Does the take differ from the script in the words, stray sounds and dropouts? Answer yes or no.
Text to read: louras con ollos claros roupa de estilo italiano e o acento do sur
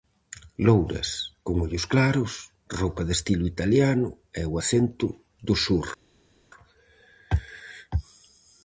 no